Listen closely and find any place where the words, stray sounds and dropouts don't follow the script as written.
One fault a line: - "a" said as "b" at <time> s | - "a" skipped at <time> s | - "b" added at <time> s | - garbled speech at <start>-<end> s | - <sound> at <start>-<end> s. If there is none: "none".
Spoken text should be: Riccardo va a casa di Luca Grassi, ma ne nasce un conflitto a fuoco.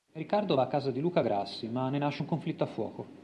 none